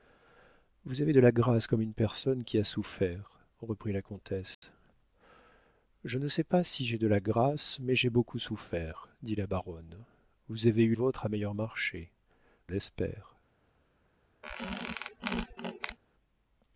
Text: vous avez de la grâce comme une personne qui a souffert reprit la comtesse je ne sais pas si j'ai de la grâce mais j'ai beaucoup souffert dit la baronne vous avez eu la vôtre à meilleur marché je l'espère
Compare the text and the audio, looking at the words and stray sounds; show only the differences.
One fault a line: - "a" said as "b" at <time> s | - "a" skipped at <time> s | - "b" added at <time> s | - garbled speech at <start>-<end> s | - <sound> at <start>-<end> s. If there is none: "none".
- dropout at 4.5-4.6 s
- "la" skipped at 10.9 s
- "je" skipped at 12.1 s
- squeak at 14.4-16.0 s